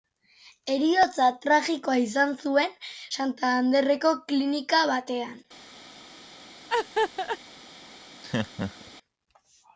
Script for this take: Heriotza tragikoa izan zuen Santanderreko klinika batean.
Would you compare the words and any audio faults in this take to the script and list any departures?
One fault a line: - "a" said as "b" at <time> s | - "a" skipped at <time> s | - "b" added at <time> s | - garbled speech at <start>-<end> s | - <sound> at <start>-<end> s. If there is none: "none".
- laugh at 6.7-7.4 s
- laugh at 8.2-8.9 s